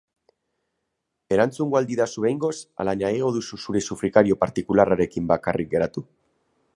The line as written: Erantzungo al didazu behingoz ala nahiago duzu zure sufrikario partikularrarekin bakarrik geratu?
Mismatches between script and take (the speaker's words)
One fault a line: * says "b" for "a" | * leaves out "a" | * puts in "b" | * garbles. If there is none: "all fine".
all fine